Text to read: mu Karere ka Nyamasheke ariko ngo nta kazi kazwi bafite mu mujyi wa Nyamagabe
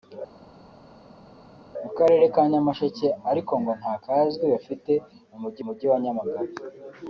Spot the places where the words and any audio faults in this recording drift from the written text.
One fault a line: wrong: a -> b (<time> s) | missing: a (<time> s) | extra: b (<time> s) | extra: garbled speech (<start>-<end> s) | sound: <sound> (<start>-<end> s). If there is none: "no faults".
missing: kazi (3.9 s)
extra: mujyi (5.6 s)